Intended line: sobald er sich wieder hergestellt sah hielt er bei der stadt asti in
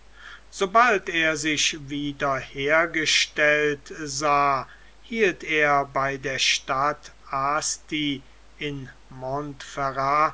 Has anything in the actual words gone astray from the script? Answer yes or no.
no